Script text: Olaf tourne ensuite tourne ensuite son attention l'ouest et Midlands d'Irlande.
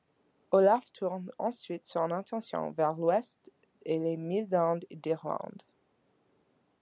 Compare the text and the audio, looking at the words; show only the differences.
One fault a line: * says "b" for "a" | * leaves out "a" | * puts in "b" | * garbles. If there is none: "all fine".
* leaves out "tourne ensuite"
* puts in "vers"
* puts in "les"